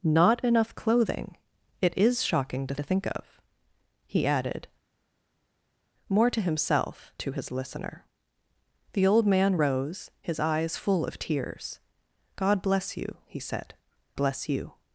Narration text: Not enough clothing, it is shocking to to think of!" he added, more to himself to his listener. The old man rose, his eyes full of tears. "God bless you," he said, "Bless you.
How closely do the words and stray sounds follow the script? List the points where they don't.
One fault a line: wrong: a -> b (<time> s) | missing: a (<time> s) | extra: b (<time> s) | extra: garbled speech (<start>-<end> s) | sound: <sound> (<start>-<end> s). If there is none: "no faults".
no faults